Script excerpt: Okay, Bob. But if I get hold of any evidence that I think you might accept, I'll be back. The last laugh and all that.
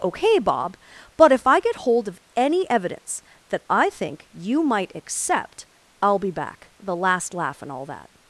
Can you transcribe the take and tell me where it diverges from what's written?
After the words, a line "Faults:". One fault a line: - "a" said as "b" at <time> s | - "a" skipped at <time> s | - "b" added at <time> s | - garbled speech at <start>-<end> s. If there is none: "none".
Okay, Bob. But if I get hold of any evidence that I think you might accept, I'll be back. The last laugh and all that.
Faults:
none